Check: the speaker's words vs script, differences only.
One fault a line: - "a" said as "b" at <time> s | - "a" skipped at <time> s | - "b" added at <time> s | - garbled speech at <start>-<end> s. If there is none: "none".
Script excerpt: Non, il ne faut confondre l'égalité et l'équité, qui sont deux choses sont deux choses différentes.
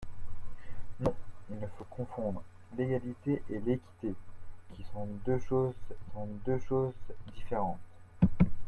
none